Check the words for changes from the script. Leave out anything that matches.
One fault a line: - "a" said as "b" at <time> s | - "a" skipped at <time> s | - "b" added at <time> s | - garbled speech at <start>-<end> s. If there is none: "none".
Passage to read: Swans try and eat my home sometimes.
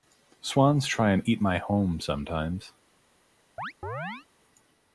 none